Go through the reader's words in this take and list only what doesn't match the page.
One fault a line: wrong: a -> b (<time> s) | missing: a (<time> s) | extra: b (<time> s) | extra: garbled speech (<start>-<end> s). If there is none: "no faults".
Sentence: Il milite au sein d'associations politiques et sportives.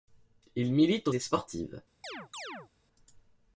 missing: sein d'associations politiques (1.1 s)